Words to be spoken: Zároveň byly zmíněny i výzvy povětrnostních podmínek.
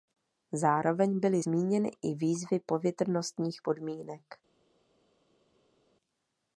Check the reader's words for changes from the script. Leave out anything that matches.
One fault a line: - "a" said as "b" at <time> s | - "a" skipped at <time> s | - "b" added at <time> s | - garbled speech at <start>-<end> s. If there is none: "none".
none